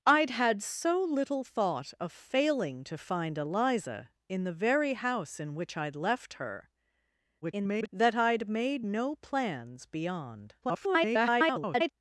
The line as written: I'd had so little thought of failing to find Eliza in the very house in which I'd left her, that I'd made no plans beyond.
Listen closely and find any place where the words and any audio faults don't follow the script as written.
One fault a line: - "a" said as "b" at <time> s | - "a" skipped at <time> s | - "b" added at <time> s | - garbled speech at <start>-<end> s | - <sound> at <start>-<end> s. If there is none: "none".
- garbled speech at 7.4-7.9 s
- garbled speech at 10.6-11.9 s